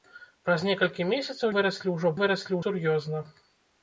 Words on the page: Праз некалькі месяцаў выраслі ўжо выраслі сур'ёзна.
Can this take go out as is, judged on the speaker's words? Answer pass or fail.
pass